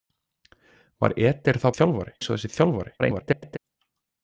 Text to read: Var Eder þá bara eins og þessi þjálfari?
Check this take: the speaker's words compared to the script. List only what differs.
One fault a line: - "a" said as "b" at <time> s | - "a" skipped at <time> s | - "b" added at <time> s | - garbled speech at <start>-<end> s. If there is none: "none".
- "bara" said as "þjálfari" at 1.8 s
- garbled speech at 3.0-3.6 s